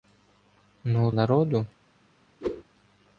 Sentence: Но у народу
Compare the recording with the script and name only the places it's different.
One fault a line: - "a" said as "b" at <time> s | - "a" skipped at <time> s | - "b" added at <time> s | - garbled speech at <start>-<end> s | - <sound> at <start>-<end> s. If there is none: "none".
- whoosh at 2.4-2.6 s